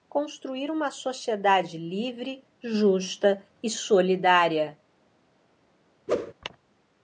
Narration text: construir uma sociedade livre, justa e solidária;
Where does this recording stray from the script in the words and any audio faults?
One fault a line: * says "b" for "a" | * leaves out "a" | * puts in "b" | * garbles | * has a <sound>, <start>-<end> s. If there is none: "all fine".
* has a whoosh, 6.1-6.3 s